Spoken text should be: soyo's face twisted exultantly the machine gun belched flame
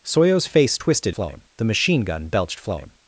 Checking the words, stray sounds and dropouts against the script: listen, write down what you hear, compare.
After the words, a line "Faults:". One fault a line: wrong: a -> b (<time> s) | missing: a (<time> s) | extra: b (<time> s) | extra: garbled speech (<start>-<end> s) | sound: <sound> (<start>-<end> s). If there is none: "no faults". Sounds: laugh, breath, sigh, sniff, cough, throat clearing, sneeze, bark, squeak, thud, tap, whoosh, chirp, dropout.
soyo's face twisted flame the machine gun belched flame
Faults:
wrong: exultantly -> flame (1.1 s)